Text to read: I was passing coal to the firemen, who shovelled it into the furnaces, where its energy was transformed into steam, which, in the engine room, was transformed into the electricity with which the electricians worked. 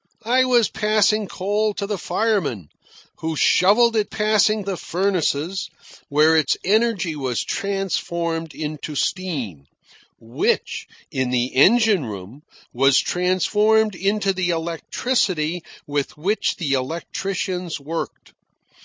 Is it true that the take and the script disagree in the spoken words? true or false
true